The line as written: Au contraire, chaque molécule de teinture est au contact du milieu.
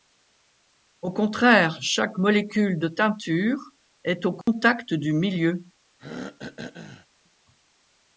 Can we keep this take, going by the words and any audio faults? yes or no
no